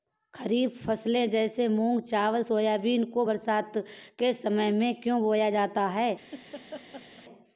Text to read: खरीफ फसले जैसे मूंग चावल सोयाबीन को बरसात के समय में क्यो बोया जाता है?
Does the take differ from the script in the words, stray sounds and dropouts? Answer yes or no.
yes